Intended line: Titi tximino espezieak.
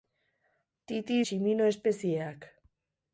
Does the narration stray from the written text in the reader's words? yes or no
no